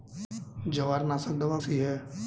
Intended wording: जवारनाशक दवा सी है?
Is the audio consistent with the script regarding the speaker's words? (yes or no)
yes